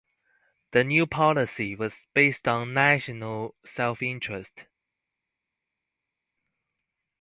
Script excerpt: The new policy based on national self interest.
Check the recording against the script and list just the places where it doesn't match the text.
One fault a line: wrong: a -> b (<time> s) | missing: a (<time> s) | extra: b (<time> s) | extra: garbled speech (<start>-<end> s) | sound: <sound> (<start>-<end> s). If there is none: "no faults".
extra: was (1.8 s)